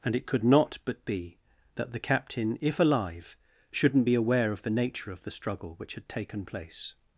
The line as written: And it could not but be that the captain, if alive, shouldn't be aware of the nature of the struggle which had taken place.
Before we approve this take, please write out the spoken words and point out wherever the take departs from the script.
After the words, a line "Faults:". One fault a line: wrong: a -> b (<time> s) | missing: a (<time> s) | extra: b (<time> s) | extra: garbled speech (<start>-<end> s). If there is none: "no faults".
And it could not but be that the captain, if alive, shouldn't be aware of the nature of the struggle which had taken place.
Faults:
no faults